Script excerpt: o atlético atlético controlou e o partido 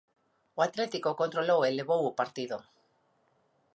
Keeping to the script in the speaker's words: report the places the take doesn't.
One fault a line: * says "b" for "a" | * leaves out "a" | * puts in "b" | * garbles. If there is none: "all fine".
* leaves out "atlético"
* puts in "levou"